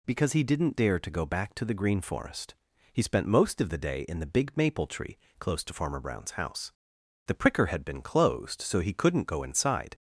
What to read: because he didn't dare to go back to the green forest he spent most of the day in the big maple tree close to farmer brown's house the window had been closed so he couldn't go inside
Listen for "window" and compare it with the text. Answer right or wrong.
wrong